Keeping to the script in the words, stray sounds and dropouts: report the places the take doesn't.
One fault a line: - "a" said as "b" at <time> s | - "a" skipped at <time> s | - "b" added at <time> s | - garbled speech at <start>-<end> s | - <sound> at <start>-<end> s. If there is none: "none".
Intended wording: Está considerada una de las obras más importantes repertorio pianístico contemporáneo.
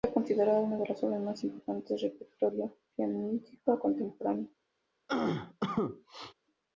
- "del" added at 2.0 s
- cough at 5.1-6.3 s